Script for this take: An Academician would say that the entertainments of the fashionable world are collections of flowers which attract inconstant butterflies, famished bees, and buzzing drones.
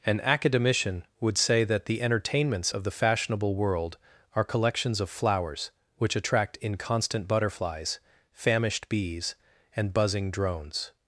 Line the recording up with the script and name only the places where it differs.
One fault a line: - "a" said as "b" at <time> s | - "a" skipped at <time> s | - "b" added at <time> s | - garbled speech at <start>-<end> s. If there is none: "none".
none